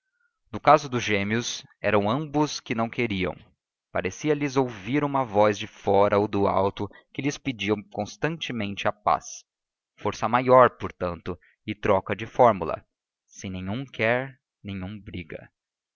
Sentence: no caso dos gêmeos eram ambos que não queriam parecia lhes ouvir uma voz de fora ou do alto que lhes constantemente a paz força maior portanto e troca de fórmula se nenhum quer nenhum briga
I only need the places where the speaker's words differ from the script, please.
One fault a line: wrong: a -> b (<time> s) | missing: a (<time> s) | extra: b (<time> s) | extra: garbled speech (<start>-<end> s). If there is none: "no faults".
extra: pedia (7.4 s)